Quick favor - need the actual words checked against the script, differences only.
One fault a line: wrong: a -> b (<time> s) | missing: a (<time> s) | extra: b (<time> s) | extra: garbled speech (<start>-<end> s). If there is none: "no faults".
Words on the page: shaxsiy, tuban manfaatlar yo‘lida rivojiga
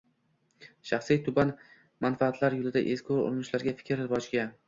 extra: ezgu urinishlarga fikr (2.9 s)